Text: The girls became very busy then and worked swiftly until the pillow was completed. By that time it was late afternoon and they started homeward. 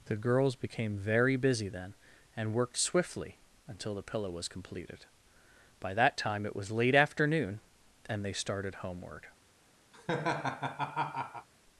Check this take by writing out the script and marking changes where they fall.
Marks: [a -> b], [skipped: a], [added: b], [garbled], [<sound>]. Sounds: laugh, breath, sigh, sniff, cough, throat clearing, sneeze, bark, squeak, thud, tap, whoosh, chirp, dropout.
The girls became very busy then and worked swiftly until the pillow was completed. By that time it was late afternoon and they started homeward. [laugh]